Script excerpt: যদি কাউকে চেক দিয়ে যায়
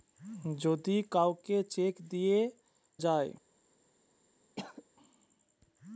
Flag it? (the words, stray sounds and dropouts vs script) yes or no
yes